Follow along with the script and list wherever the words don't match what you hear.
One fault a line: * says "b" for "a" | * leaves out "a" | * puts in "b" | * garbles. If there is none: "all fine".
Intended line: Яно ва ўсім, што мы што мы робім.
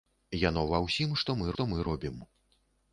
all fine